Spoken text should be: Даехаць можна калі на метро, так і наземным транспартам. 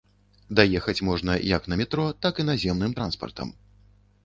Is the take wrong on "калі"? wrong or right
wrong